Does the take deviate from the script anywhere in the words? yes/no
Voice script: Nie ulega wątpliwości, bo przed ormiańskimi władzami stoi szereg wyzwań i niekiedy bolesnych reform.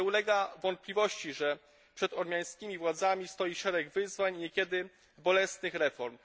yes